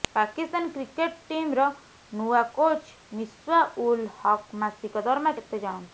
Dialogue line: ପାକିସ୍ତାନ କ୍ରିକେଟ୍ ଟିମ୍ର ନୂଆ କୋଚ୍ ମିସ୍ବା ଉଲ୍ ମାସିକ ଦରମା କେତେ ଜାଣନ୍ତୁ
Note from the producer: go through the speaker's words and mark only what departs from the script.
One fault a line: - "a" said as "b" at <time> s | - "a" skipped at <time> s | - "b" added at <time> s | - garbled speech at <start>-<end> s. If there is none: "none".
- "ହକ୍" added at 4.2 s